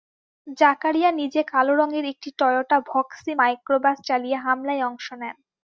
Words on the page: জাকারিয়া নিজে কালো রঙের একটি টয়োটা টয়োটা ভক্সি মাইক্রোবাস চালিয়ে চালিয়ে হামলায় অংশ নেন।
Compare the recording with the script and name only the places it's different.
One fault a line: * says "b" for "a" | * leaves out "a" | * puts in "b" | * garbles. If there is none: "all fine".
* leaves out "টয়োটা"
* leaves out "চালিয়ে"